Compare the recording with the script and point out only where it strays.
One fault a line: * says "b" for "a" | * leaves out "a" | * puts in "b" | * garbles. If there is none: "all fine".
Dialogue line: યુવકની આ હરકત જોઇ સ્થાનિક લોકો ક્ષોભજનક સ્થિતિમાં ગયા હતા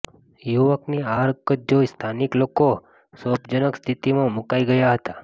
* puts in "મુકાઇ"